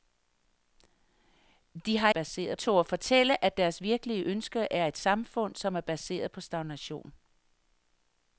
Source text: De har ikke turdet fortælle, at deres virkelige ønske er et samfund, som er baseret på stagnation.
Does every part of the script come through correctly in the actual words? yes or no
no